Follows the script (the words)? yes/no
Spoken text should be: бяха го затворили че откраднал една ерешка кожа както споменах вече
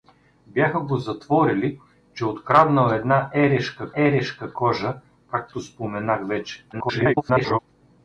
no